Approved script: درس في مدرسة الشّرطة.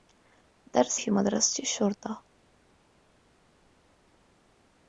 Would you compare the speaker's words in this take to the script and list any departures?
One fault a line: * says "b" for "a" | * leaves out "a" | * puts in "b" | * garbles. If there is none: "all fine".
all fine